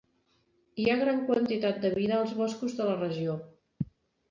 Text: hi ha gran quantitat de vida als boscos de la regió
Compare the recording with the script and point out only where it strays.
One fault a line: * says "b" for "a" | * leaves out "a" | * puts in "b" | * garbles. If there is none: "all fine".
all fine